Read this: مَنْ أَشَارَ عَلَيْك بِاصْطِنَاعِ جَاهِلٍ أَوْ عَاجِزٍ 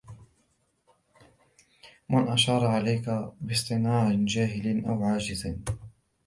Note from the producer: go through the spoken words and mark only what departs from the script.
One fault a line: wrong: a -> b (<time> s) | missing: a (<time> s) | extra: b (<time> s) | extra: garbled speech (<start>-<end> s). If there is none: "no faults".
no faults